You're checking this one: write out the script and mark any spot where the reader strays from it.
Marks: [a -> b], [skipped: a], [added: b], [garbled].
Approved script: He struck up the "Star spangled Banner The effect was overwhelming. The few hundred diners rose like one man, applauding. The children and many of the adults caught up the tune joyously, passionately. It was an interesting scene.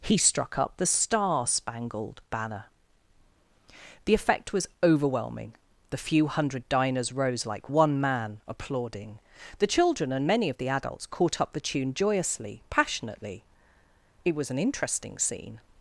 He struck up the "Star spangled Banner The effect was overwhelming. The few hundred diners rose like one man, applauding. The children and many of the adults caught up the tune joyously, passionately. It was an interesting scene.